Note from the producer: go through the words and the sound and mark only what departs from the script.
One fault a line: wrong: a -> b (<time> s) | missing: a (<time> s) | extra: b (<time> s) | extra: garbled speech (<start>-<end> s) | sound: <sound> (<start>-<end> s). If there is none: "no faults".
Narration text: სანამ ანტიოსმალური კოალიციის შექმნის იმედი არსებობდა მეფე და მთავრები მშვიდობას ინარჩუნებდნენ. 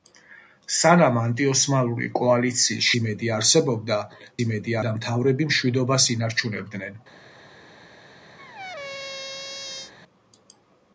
missing: შექმნის (2.9 s)
wrong: მეფე -> იმედი (4.4 s)
sound: squeak (8.4-9.9 s)